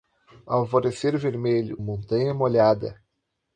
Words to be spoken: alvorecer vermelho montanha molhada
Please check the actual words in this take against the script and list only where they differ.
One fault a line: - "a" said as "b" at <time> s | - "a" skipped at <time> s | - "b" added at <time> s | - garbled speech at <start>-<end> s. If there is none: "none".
none